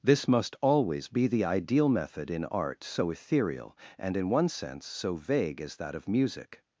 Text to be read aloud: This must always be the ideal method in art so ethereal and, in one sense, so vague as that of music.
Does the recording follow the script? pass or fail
pass